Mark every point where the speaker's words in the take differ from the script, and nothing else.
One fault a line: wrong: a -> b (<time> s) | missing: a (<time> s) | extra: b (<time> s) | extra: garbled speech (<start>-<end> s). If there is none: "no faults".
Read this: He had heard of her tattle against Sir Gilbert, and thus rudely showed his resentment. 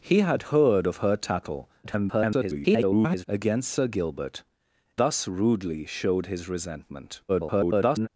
extra: garbled speech (1.8-3.3 s)
missing: and (4.4 s)
extra: garbled speech (7.3-8.1 s)